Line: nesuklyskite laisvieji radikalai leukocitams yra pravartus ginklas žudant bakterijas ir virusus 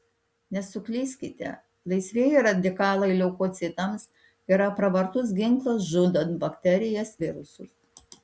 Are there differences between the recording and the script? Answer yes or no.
yes